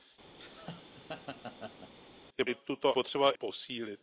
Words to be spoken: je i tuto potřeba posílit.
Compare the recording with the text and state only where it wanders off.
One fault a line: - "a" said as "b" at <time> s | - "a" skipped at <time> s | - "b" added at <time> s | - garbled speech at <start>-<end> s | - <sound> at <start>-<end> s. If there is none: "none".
- laugh at 0.4-1.9 s